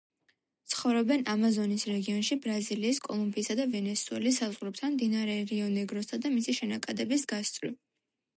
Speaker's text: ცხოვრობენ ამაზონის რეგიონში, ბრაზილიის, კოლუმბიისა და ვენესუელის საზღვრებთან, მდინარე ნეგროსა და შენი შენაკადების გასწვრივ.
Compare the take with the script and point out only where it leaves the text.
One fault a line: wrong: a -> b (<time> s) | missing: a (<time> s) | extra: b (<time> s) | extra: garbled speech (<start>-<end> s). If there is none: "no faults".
extra: რიო (5.5 s)
wrong: შენი -> მისი (6.4 s)